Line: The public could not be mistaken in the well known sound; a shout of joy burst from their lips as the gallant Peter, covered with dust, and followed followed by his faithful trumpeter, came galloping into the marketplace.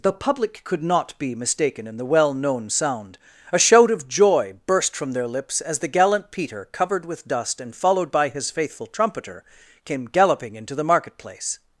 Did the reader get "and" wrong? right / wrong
right